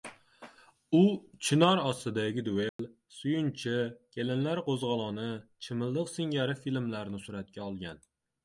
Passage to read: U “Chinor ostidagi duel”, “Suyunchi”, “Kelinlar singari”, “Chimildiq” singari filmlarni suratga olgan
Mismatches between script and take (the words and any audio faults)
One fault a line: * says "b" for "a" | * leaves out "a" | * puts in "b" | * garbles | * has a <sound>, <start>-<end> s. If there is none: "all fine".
* has a dropout, 2.7-2.8 s
* says "qo‘zg‘oloni" for "singari"